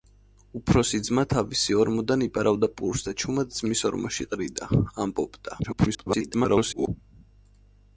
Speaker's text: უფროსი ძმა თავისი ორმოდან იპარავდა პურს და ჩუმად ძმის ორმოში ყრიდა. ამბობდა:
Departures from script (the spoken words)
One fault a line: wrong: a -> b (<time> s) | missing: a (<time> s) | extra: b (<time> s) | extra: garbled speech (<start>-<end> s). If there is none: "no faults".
extra: garbled speech (5.6-6.9 s)